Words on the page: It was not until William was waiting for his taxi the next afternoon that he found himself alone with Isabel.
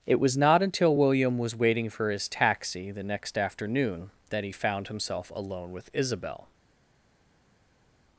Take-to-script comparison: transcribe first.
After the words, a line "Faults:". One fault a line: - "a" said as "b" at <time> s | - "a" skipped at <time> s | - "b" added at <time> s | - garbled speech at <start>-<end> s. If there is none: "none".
It was not until William was waiting for his taxi the next afternoon that he found himself alone with Isabel.
Faults:
none